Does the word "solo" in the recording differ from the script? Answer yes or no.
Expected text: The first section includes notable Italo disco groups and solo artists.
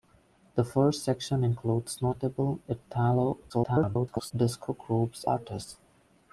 yes